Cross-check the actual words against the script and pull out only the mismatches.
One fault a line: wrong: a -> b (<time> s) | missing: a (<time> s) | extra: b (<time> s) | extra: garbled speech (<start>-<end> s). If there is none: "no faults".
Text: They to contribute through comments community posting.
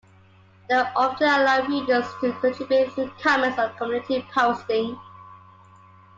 extra: often allow readers (0.7 s)
extra: or (3.6 s)